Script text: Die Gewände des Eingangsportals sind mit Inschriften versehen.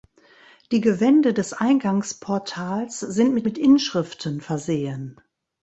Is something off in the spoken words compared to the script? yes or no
yes